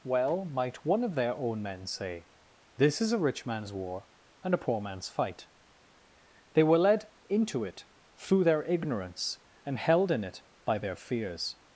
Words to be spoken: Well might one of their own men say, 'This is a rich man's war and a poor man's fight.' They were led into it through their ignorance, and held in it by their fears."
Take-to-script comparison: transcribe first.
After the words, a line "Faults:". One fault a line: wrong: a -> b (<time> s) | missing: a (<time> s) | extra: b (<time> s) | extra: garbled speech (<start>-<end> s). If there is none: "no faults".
Well might one of their own men say, 'This is a rich man's war and a poor man's fight.' They were led into it through their ignorance, and held in it by their fears."
Faults:
no faults